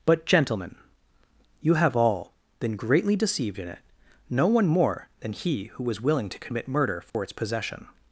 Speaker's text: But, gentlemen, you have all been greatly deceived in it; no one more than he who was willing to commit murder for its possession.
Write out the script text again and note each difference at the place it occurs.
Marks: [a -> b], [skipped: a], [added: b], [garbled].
But, gentlemen, you have all been greatly deceived in it; no one more than he who was willing to commit murder for its possession.